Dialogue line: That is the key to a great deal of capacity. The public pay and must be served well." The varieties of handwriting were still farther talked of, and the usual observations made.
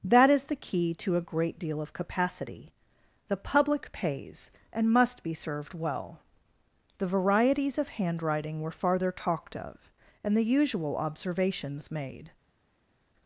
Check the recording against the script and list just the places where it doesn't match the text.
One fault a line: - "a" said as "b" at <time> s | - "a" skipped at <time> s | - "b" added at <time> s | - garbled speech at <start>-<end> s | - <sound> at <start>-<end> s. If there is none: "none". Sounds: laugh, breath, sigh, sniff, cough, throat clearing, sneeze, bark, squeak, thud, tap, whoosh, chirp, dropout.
- "pay" said as "pays" at 3.9 s
- "still" skipped at 8.7 s